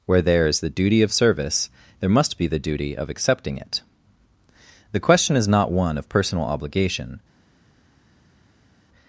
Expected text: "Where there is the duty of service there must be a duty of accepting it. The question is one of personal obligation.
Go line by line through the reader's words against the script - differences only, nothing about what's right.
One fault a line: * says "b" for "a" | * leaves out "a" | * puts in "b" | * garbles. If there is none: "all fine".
* says "the" for "a"
* puts in "not"